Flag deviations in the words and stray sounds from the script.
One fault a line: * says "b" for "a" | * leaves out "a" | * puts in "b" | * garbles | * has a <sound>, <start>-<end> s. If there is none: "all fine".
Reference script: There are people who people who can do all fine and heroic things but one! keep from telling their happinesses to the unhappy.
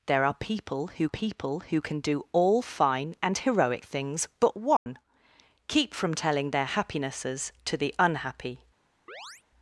* has a dropout, 4.8-4.9 s
* has a chirp, 9.1-9.4 s